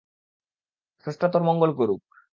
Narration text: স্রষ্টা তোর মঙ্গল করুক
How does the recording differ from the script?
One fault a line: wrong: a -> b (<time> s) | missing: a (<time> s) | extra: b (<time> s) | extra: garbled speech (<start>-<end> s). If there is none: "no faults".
no faults